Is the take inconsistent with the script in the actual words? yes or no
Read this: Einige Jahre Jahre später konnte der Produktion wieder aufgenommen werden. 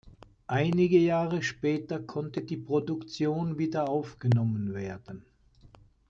yes